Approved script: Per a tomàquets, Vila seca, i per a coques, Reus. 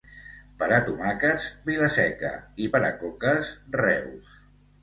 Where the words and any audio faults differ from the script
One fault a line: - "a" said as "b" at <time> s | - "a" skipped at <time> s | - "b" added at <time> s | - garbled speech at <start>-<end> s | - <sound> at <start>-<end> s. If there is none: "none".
none